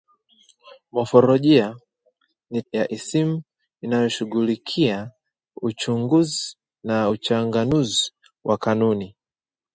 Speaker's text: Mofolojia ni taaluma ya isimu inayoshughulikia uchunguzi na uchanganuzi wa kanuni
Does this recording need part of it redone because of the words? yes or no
yes